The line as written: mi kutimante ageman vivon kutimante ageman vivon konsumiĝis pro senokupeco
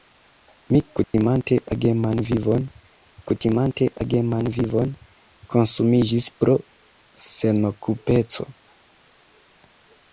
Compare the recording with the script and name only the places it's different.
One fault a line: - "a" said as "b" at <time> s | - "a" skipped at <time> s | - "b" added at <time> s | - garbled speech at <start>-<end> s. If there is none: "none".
none